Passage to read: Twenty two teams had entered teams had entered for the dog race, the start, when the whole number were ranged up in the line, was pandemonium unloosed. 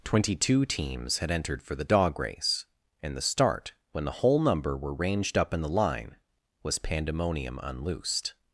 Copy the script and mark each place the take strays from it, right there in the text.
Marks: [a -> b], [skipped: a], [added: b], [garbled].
Twenty two teams had entered [skipped: teams had entered] for the dog race, [added: and] the start, when the whole number were ranged up in the line, was pandemonium unloosed.